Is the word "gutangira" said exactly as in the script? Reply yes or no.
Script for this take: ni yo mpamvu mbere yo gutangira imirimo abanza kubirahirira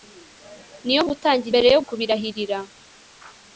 no